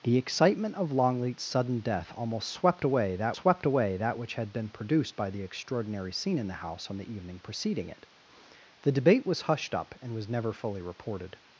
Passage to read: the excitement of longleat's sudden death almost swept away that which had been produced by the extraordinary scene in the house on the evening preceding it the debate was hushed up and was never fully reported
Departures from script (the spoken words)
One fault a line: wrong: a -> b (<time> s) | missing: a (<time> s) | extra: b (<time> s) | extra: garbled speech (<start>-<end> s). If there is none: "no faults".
extra: swept away that (3.3 s)